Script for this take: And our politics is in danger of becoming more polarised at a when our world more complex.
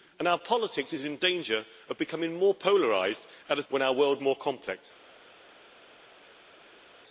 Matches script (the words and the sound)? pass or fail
pass